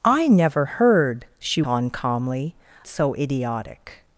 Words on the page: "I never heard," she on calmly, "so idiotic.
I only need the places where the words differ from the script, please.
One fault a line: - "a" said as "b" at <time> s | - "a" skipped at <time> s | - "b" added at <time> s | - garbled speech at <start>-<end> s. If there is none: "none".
none